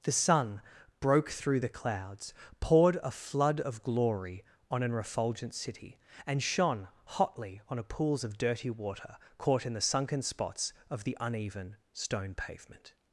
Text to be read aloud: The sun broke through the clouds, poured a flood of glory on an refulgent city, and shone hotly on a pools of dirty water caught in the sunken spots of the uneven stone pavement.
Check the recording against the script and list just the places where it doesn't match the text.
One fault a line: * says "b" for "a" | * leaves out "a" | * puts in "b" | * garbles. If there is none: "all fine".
all fine